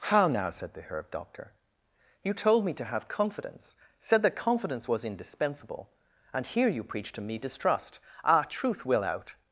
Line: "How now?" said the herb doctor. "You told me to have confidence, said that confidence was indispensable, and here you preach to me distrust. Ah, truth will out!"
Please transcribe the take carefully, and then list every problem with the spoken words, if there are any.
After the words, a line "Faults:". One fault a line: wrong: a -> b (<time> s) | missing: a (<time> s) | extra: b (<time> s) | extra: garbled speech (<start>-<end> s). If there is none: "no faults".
"How now?" said the herb doctor. "You told me to have confidence, said that confidence was indispensable, and here you preach to me distrust. Ah, truth will out!"
Faults:
no faults